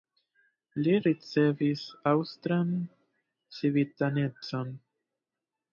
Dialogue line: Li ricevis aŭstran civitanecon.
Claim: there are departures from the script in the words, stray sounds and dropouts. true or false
false